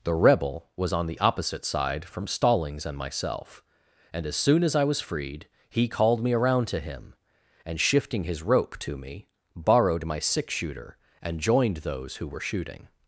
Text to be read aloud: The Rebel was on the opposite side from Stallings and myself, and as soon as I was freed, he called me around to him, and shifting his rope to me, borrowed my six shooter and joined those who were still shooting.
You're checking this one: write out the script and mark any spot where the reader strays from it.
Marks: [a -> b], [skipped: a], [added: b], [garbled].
The Rebel was on the opposite side from Stallings and myself, and as soon as I was freed, he called me around to him, and shifting his rope to me, borrowed my six shooter and joined those who were [skipped: still] shooting.